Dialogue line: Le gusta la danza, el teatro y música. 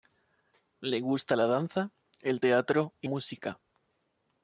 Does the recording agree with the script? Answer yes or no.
yes